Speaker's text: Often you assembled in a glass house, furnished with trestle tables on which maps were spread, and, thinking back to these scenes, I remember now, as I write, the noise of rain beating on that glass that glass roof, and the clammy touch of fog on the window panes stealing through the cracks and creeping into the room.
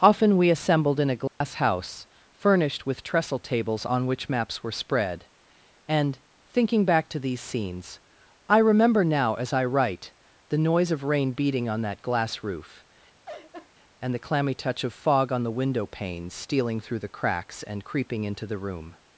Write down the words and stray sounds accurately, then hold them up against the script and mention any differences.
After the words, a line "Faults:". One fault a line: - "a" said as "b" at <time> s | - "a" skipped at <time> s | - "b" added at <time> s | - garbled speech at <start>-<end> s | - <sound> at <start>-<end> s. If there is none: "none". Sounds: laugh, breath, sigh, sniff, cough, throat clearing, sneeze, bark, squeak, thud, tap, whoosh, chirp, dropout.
Often we assembled in a glass house, furnished with trestle tables on which maps were spread, and, thinking back to these scenes, I remember now, as I write, the noise of rain beating on that glass roof, and the clammy touch of fog on the window panes stealing through the cracks and creeping into the room.
Faults:
- "you" said as "we" at 0.4 s
- dropout at 1.3-1.4 s
- "that glass" skipped at 12.4 s
- laugh at 13.3-13.7 s